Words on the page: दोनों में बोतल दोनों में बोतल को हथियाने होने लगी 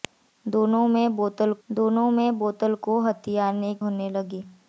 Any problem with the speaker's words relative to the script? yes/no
no